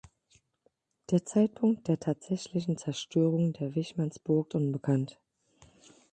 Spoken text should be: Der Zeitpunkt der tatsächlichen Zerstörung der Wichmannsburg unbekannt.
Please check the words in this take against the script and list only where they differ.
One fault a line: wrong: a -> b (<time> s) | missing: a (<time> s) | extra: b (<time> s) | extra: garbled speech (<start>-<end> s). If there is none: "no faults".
no faults